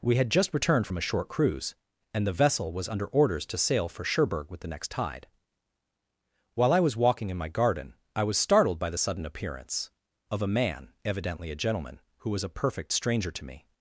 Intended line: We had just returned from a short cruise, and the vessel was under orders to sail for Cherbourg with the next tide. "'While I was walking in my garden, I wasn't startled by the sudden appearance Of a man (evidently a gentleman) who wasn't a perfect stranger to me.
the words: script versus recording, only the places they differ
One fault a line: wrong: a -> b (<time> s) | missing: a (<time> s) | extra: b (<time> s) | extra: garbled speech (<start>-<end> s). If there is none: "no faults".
wrong: wasn't -> was (8.2 s)
wrong: wasn't -> was (12.3 s)